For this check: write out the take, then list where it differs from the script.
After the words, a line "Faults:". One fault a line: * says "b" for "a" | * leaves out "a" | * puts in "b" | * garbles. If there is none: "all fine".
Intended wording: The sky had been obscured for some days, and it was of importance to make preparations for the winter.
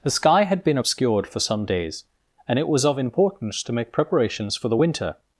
The sky had been obscured for some days, and it was of importance to make preparations for the winter.
Faults:
all fine